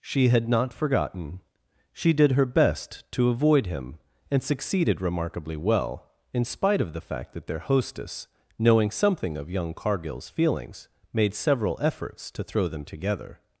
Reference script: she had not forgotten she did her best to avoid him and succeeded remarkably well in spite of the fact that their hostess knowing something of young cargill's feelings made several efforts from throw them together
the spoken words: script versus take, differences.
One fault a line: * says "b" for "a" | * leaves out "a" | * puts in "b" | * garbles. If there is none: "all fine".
* says "to" for "from"